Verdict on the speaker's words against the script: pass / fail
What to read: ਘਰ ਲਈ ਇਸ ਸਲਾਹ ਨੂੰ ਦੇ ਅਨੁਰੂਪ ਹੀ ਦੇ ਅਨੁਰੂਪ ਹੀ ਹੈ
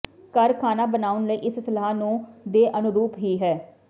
fail